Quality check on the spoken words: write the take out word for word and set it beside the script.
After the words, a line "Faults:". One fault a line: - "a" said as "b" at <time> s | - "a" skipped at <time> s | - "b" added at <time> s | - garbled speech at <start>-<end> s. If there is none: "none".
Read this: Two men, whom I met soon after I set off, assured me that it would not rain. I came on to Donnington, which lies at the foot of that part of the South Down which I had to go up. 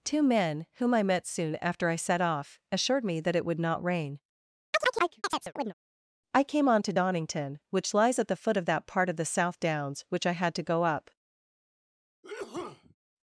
Two men, whom I met soon after I set off, assured me that it would not rain. I came on to Donnington, which lies at the foot of that part of the South Downs which I had to go up.
Faults:
- "Down" said as "Downs" at 9.6 s